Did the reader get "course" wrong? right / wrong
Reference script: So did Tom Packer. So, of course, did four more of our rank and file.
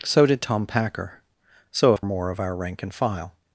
wrong